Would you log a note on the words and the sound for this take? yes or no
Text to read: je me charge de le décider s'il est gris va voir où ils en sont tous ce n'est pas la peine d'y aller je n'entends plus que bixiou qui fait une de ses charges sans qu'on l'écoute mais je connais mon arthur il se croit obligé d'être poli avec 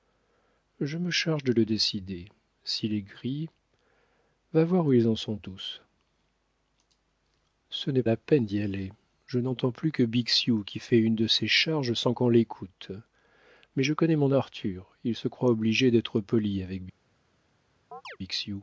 yes